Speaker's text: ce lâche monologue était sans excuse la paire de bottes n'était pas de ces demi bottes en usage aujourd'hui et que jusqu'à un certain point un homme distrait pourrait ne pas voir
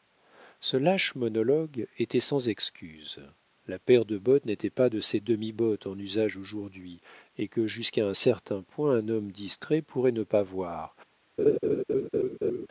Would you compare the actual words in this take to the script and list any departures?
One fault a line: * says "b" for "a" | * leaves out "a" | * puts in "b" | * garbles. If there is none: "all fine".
all fine